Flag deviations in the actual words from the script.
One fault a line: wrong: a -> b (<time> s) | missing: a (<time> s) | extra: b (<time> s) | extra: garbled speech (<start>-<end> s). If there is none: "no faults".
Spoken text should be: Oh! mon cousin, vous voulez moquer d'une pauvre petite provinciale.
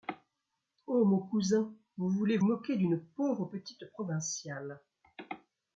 no faults